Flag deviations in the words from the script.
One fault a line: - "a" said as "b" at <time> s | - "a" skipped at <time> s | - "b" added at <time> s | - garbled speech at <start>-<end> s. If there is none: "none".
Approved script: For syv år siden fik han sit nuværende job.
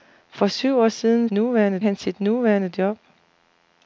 - "fik" said as "nuværende" at 1.3 s